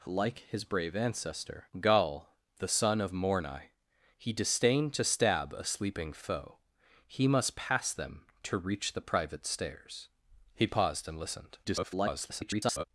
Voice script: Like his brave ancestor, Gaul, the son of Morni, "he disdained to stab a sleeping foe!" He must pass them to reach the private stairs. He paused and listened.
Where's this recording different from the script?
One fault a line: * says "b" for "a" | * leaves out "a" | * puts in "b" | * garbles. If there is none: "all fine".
* garbles